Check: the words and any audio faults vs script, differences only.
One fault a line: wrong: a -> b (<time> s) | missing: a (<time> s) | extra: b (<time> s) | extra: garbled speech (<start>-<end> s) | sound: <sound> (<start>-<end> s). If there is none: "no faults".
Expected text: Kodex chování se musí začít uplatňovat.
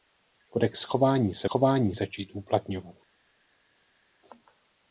wrong: musí -> chování (1.4 s)